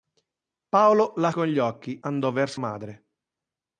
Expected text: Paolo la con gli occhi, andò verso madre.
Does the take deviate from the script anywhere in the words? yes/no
no